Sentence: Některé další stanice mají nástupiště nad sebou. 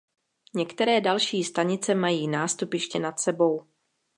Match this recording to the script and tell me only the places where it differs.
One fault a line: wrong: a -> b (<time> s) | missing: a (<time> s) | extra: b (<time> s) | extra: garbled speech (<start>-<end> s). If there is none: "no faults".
no faults